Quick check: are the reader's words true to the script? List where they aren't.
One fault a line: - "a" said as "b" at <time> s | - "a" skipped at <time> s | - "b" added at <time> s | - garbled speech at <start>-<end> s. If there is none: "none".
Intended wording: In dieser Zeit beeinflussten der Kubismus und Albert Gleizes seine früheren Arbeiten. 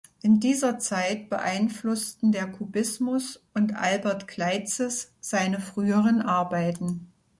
none